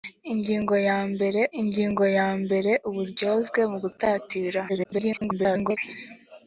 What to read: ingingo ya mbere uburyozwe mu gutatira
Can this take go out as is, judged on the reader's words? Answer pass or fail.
fail